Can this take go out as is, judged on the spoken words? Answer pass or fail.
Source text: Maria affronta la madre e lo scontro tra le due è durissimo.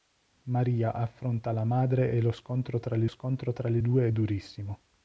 fail